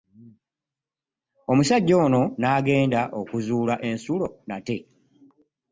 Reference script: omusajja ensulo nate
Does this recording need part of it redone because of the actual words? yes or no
yes